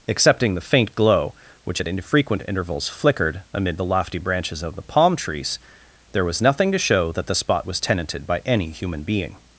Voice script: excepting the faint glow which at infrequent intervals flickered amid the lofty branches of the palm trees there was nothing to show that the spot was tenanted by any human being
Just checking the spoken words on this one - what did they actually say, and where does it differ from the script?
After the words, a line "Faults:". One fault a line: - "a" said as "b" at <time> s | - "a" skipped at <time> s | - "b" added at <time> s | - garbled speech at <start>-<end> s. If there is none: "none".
excepting the faint glow which at infrequent intervals flickered amid the lofty branches of the palm trees there was nothing to show that the spot was tenanted by any human being
Faults:
none